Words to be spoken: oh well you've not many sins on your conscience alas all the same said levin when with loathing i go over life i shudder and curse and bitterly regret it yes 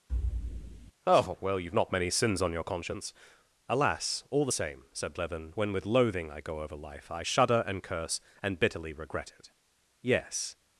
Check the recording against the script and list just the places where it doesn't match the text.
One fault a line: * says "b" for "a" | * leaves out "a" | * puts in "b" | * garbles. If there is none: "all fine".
all fine